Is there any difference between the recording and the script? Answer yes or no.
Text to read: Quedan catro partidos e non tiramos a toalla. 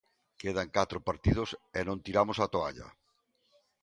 no